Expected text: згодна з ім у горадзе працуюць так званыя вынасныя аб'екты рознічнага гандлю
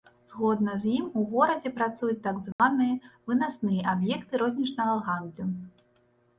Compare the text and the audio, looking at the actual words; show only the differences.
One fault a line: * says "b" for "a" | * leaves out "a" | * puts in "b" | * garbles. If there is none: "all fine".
all fine